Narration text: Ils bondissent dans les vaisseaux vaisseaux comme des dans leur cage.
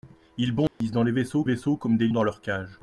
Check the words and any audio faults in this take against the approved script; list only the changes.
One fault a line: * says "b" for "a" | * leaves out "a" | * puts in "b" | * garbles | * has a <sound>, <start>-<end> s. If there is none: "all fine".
* has a dropout, 0.7-0.8 s